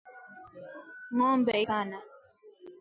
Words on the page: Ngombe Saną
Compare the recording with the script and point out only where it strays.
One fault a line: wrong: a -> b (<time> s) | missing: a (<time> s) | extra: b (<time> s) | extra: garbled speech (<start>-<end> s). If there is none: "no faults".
no faults